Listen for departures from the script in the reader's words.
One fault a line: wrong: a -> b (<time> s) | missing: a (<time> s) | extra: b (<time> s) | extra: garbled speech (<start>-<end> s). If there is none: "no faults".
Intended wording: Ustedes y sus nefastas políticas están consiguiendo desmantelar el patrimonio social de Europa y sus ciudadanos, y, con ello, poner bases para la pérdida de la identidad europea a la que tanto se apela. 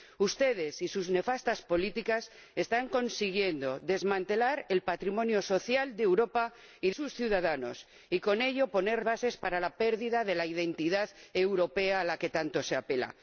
no faults